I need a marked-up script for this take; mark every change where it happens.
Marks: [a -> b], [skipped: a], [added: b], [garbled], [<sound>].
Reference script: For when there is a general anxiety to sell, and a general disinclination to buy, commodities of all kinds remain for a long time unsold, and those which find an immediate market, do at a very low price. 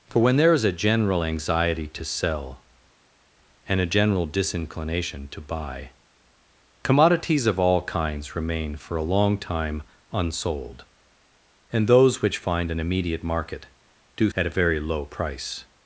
For when there is a general anxiety to sell, and a general disinclination to buy, commodities of all kinds remain for a long time unsold, and those which find an immediate market, do at a very low price.